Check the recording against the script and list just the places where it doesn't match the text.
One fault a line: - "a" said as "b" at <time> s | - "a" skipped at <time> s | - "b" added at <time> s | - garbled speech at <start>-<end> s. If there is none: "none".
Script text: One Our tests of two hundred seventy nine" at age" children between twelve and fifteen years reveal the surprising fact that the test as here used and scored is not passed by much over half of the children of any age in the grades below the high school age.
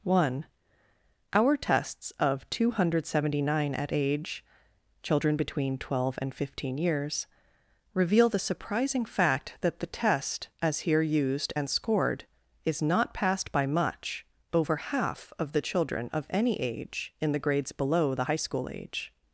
none